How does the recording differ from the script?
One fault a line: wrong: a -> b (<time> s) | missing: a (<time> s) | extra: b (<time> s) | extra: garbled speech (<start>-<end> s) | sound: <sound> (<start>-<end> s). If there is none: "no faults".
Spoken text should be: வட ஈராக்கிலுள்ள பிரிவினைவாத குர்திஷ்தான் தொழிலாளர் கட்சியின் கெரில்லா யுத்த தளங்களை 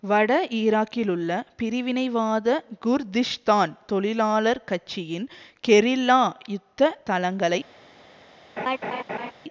sound: laugh (8.6-9.3 s)